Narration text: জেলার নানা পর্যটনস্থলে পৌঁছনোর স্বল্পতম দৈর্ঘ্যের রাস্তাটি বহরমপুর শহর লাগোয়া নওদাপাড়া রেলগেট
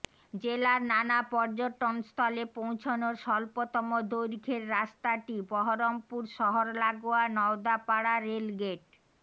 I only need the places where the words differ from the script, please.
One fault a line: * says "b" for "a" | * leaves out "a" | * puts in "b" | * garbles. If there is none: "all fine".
all fine